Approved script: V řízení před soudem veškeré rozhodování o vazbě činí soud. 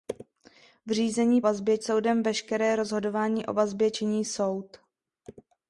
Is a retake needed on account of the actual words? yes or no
yes